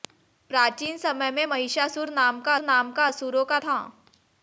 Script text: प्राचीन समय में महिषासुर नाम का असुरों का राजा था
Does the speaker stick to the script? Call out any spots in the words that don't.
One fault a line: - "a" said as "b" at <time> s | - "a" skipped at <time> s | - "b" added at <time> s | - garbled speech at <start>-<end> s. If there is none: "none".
- "नाम का" added at 2.6 s
- "राजा" skipped at 3.6 s